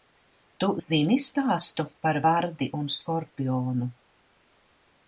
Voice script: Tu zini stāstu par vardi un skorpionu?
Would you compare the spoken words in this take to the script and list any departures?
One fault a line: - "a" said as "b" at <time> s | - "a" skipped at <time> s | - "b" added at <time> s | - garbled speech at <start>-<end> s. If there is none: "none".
none